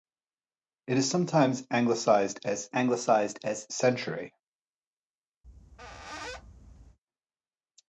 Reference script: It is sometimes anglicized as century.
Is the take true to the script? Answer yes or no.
no